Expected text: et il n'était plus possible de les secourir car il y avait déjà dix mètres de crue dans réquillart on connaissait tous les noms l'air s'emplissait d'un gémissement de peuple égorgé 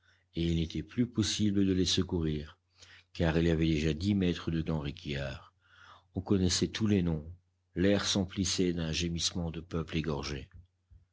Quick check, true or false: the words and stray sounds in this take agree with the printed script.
false